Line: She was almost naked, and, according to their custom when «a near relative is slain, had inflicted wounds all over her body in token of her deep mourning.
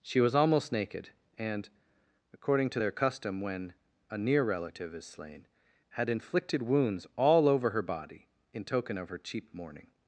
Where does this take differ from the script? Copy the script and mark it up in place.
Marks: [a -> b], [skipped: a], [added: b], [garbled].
She was almost naked, and, according to their custom when «a near relative is slain, had inflicted wounds all over her body in token of her [deep -> cheap] mourning.